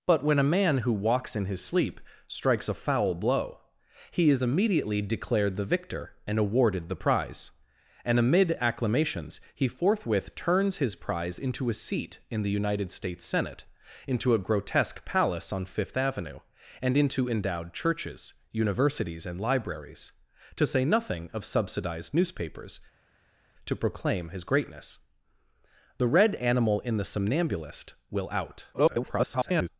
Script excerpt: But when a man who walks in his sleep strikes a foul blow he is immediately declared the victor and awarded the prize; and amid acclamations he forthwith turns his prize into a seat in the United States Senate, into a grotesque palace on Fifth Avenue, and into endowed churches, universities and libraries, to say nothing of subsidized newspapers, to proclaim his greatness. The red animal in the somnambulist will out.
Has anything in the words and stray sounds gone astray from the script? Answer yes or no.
yes